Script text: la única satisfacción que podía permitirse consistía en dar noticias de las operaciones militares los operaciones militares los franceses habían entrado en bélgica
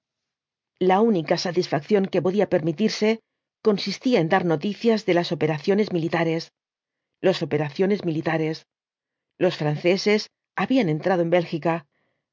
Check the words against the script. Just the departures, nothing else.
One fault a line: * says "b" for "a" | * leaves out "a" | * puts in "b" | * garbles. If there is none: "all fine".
all fine